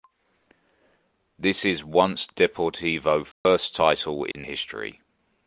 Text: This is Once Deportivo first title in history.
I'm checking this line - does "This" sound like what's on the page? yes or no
yes